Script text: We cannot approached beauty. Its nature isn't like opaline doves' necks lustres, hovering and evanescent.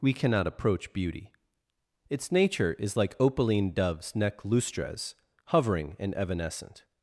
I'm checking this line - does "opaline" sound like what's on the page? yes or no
yes